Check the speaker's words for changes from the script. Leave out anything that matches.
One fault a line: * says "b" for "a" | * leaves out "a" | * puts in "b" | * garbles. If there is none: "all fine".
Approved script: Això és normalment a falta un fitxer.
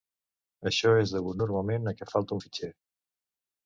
* puts in "degut"
* puts in "què"